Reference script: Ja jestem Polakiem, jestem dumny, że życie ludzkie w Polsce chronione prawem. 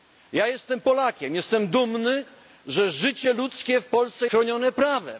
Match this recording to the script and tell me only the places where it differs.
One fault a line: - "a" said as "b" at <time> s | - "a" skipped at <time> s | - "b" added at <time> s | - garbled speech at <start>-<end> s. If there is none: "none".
none